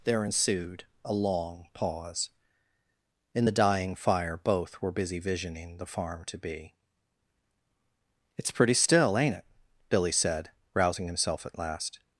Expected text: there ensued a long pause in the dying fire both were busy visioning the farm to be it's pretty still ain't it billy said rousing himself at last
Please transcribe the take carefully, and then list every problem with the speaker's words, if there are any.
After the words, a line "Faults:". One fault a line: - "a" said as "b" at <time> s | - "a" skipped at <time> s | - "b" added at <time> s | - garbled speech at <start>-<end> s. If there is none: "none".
there ensued a long pause in the dying fire both were busy visioning the farm to be it's pretty still ain't it billy said rousing himself at last
Faults:
none